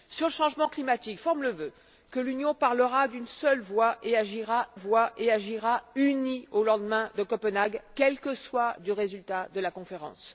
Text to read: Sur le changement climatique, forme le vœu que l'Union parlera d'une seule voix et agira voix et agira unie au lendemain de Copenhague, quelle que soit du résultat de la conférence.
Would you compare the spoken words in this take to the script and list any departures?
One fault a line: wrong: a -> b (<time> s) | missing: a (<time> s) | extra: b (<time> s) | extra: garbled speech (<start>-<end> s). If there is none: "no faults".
no faults